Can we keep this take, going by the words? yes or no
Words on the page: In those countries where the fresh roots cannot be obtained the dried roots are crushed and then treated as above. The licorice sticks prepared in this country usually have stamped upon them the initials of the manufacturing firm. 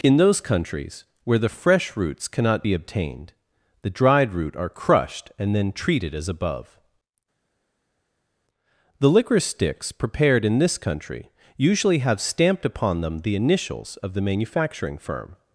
no